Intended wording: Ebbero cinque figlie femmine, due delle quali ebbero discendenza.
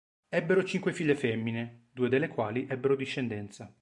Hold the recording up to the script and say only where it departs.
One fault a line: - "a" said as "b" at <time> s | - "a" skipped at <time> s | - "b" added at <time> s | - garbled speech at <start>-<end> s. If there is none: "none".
none